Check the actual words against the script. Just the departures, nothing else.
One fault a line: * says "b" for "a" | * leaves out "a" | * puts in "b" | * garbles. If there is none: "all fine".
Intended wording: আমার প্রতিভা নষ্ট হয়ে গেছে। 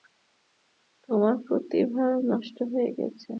* says "তোমার" for "আমার"